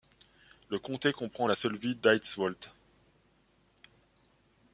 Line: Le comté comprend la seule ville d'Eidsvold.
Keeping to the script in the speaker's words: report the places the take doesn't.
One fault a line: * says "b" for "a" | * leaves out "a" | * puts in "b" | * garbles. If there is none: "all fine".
all fine